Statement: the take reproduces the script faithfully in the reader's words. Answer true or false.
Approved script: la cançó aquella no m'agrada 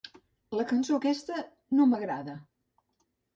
false